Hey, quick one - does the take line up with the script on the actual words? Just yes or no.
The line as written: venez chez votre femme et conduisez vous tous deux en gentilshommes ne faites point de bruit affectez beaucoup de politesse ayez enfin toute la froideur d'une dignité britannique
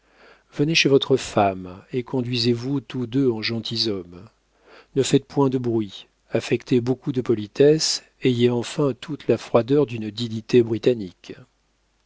yes